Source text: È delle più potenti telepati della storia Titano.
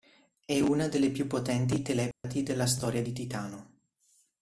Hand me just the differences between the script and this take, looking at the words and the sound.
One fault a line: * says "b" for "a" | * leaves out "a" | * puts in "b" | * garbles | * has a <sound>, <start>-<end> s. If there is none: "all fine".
* puts in "una"
* has a dropout, 2.1-2.2 s
* puts in "di"